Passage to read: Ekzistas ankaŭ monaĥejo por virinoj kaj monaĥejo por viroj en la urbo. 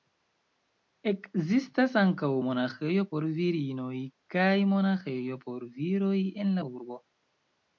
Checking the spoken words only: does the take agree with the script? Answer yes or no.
yes